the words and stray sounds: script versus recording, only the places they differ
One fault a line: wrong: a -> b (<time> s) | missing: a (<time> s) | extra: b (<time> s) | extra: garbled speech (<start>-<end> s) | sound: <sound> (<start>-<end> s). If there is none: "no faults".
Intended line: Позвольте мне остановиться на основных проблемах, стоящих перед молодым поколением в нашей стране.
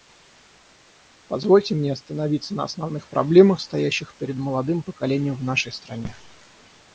no faults